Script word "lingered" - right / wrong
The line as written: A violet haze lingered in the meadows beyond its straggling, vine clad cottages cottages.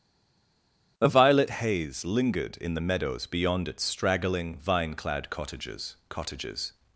right